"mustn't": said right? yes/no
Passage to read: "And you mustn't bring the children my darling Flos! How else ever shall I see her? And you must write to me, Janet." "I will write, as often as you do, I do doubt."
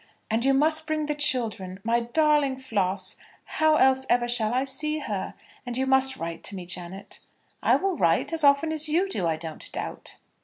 no